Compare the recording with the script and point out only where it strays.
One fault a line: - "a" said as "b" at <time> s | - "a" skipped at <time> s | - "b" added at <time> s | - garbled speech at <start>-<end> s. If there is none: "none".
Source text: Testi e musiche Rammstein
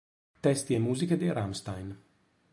- "dei" added at 1.2 s